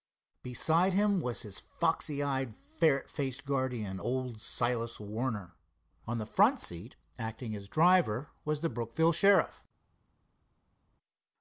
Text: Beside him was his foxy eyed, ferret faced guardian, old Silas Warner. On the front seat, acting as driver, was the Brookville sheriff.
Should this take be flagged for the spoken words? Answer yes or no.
no